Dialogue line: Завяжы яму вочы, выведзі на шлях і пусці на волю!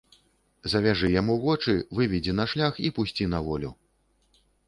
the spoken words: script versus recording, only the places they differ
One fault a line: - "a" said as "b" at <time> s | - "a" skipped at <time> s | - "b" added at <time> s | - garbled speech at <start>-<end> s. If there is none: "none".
none